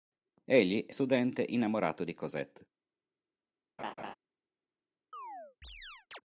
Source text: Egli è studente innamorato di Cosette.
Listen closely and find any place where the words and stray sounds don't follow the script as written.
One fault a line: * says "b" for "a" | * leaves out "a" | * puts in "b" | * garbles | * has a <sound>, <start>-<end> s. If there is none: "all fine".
* has a laugh, 3.8-4.1 s
* has a chirp, 5.1-6.2 s